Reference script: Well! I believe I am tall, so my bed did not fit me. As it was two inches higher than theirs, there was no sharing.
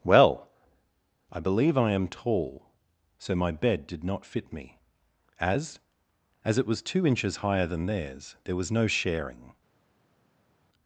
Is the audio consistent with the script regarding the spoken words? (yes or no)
no